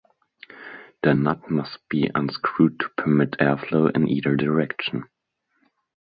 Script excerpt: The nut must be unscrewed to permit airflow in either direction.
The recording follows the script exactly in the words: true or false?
true